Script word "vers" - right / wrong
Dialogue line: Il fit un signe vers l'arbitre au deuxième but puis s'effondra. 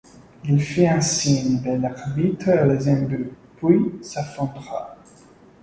right